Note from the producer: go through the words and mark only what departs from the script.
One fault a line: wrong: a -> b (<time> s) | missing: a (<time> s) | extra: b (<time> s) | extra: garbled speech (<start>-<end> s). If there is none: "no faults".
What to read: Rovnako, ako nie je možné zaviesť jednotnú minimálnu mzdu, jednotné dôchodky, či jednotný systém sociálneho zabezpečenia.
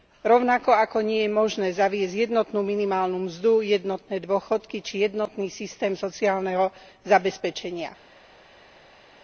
no faults